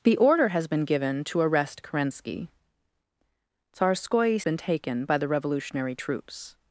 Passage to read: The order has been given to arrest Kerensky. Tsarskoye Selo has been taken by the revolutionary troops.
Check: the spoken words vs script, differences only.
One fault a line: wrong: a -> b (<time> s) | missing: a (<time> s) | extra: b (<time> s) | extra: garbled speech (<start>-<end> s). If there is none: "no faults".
missing: Selo has (4.4 s)